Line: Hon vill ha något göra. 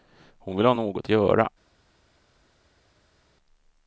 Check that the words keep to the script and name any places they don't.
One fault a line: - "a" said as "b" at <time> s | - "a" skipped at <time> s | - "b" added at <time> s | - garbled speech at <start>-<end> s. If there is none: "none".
none